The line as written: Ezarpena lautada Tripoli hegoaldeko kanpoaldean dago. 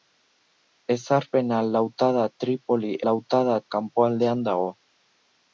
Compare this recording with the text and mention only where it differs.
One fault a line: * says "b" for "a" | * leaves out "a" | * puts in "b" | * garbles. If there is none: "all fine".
* says "lautada" for "hegoaldeko"